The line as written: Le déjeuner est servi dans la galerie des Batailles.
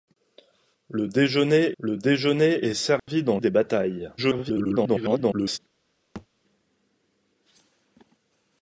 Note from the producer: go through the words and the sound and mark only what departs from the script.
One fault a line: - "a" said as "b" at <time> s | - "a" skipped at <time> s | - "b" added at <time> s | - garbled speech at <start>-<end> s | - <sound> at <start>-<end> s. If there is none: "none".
- "le déjeuner" added at 1.8 s
- dropout at 3.0-3.1 s
- "la galerie" skipped at 3.4 s
- garbled speech at 4.2-5.6 s
- thud at 6.1-6.3 s